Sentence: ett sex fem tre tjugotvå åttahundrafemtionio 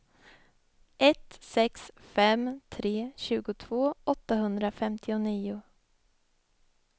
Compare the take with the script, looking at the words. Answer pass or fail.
pass